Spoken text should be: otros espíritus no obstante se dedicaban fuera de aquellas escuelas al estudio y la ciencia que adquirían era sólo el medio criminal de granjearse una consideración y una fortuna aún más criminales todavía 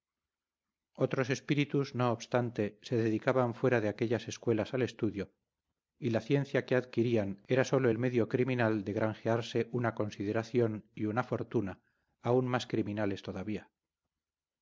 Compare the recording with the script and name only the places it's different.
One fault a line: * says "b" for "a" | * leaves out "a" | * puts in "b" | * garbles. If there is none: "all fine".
all fine